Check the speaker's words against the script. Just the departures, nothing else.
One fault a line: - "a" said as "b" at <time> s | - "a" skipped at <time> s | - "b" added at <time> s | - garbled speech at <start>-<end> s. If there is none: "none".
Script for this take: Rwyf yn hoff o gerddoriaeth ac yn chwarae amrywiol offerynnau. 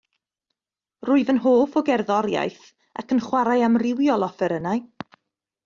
none